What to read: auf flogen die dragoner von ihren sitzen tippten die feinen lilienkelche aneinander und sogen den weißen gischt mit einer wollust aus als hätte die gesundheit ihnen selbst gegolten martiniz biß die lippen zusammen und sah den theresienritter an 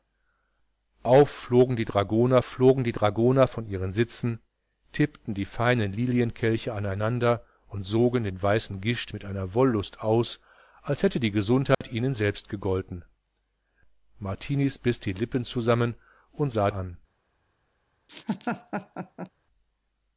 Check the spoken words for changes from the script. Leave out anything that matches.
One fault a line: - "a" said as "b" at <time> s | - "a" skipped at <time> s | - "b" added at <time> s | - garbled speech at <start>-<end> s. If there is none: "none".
- "flogen die dragoner" added at 2.4 s
- "den theresienritter" skipped at 16.7 s